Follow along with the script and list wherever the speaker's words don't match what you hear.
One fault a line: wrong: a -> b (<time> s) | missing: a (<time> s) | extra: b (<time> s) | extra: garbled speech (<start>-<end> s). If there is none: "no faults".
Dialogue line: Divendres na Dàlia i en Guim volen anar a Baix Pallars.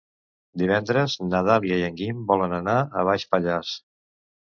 no faults